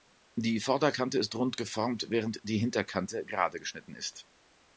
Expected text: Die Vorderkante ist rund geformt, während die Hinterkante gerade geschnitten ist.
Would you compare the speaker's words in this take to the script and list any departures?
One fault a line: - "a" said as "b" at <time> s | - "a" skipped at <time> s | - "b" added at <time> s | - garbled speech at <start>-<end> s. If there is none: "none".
none